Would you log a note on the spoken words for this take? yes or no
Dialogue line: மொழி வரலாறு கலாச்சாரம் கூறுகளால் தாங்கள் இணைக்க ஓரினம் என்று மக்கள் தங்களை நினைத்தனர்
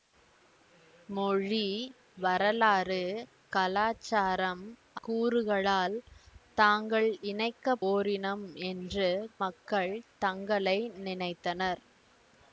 no